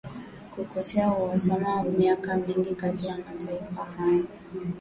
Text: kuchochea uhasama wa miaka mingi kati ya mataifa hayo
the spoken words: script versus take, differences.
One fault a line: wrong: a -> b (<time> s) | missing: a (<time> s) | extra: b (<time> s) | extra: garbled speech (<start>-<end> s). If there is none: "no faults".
no faults